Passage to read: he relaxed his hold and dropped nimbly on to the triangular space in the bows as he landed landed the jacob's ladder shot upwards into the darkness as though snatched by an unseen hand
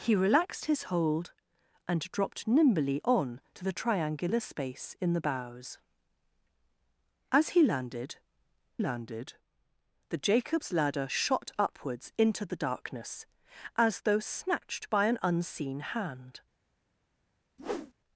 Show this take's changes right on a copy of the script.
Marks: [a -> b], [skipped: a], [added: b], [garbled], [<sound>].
he relaxed his hold and dropped nimbly on to the triangular space in the bows as he landed landed the jacob's ladder shot upwards into the darkness as though snatched by an unseen hand [whoosh]